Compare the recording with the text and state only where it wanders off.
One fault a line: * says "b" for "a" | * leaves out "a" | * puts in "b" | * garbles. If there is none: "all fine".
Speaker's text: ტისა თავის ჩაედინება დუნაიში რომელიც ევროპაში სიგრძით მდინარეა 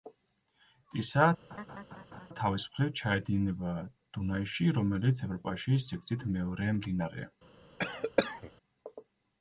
* puts in "მხრივ"
* puts in "მეორე"